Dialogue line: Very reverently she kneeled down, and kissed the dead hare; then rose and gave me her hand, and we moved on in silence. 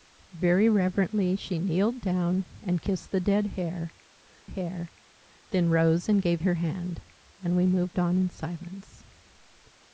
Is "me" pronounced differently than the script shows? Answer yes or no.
yes